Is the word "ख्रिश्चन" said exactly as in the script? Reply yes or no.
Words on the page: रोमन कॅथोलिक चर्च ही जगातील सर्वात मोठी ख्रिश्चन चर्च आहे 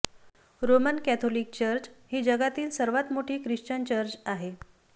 yes